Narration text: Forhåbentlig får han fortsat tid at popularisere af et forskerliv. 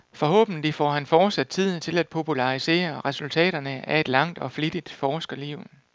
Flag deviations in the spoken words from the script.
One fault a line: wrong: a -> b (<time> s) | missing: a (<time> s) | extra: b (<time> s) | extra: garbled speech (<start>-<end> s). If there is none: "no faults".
extra: til (1.8 s)
extra: resultaterne (3.1 s)
extra: langt og flittigt (4.1 s)